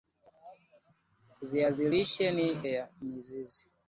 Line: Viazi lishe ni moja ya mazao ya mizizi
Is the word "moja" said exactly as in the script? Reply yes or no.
no